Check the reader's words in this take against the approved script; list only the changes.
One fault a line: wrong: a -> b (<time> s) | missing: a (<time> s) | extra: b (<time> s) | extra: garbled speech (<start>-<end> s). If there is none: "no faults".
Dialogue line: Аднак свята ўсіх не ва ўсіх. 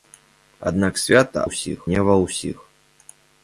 no faults